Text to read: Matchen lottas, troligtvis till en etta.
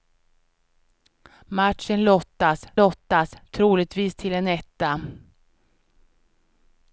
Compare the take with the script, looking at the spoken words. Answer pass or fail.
fail